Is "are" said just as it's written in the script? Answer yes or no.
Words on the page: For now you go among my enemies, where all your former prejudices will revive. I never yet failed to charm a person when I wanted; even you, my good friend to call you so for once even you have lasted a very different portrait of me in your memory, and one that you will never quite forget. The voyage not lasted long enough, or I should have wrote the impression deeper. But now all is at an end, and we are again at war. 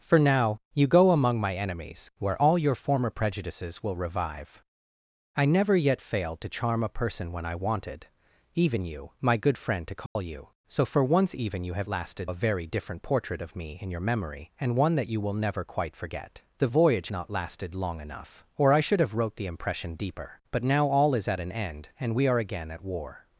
yes